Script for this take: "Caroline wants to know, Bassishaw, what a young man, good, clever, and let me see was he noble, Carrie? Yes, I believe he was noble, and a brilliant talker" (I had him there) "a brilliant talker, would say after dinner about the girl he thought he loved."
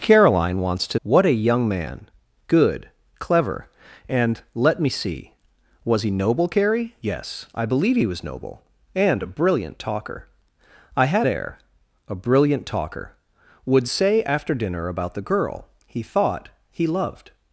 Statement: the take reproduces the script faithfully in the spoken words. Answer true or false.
false